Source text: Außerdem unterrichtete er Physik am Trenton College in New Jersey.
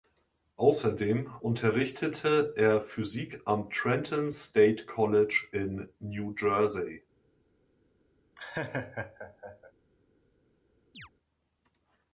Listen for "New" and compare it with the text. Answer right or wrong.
right